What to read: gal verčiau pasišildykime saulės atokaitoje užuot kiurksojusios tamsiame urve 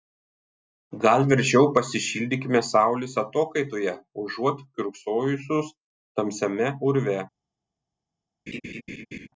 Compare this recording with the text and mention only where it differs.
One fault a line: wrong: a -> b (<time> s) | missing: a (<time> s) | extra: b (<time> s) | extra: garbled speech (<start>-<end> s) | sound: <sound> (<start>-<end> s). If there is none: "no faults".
sound: laugh (8.5-9.3 s)